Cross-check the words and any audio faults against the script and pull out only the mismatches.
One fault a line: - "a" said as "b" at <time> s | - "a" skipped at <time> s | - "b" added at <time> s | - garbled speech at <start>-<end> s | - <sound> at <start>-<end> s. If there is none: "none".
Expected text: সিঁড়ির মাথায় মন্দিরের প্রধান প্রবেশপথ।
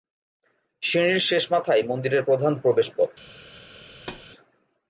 - "শেষ" added at 1.2 s
- thud at 3.9-4.3 s